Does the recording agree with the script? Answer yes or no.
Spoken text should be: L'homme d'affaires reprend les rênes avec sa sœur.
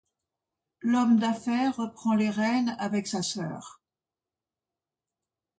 yes